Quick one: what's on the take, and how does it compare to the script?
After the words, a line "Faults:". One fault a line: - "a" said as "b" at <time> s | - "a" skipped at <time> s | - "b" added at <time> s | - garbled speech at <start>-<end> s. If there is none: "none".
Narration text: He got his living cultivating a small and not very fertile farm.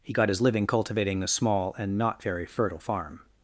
He got his living cultivating a small and not very fertile farm.
Faults:
none